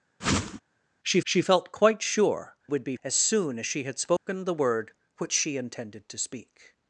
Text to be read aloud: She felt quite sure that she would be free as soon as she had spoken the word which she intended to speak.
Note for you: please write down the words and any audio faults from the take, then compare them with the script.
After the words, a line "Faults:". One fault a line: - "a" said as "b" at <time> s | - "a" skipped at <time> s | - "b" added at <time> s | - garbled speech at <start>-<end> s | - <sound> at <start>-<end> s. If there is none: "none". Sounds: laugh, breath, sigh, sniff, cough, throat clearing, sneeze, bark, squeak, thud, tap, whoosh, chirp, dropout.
She she felt quite sure would be as soon as she had spoken the word which she intended to speak.
Faults:
- whoosh at 0.2-0.6 s
- "she" added at 1.2 s
- "that she" skipped at 2.6 s
- "free" skipped at 3.0 s
- dropout at 4.2-4.3 s